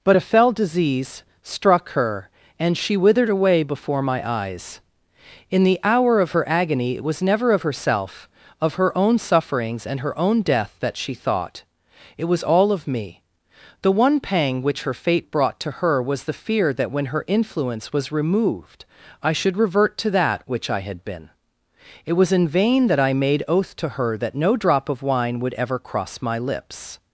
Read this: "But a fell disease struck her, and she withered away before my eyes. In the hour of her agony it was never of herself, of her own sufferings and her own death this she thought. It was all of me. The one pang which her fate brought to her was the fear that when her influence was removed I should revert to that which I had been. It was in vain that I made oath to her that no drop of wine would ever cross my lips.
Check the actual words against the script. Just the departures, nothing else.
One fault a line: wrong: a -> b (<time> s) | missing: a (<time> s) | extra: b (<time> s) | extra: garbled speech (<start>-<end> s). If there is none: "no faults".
wrong: this -> that (10.8 s)